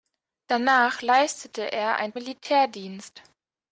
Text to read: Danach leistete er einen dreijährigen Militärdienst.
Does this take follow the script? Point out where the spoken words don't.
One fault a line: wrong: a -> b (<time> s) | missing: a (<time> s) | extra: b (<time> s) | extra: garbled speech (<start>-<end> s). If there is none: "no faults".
missing: dreijährigen (2.1 s)